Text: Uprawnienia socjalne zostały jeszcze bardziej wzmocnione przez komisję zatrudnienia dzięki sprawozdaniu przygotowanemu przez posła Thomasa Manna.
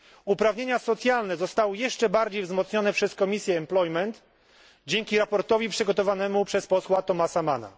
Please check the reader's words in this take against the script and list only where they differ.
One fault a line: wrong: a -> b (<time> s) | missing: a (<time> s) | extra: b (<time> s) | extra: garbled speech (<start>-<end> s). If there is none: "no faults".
no faults